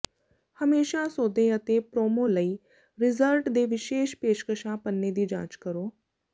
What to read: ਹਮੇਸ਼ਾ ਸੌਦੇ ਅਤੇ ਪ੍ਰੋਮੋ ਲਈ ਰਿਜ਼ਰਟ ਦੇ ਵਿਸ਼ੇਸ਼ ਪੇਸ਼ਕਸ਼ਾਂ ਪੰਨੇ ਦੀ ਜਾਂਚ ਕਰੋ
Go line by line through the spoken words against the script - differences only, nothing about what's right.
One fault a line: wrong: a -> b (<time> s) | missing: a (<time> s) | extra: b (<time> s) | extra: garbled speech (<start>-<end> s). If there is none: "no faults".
no faults